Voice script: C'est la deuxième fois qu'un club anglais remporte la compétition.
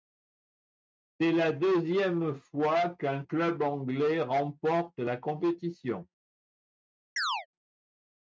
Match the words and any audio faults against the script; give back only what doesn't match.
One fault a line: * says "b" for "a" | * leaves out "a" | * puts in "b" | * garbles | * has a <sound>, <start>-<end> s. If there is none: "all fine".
* has a chirp, 7.2-7.5 s